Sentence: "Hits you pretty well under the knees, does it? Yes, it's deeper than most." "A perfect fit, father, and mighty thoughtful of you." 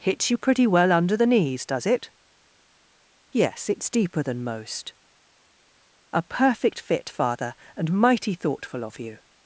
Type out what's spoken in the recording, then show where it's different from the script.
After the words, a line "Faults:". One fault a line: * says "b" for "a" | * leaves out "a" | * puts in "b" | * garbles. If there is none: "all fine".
"Hits you pretty well under the knees, does it? Yes, it's deeper than most." "A perfect fit, father, and mighty thoughtful of you."
Faults:
all fine